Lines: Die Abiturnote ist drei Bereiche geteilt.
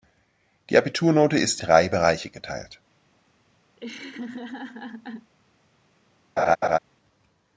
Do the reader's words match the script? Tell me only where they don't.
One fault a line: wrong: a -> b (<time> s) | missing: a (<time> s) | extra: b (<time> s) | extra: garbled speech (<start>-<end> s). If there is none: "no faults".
no faults